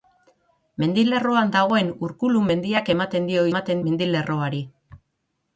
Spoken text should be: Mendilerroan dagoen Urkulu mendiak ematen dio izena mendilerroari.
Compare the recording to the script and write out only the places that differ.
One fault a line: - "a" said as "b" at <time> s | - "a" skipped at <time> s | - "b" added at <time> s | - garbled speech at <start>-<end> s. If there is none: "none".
- "izena" said as "ematen" at 3.5 s